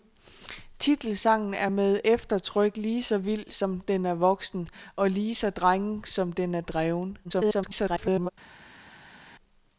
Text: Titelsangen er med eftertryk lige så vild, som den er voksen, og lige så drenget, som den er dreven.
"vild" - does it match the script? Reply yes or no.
yes